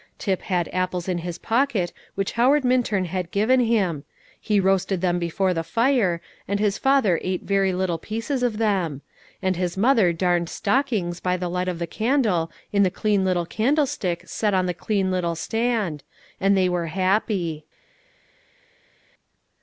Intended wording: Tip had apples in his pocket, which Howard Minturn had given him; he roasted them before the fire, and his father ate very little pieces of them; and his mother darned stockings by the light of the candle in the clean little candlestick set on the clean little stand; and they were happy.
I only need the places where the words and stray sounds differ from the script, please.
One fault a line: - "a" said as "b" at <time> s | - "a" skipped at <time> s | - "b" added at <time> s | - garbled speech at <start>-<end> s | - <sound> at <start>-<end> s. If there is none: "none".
none